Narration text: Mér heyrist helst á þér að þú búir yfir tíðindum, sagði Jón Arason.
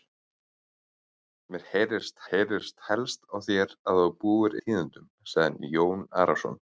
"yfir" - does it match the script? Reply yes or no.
no